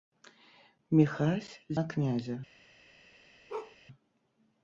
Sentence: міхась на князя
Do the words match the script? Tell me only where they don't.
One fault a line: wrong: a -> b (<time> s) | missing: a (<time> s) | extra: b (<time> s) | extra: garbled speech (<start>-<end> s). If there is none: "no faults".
no faults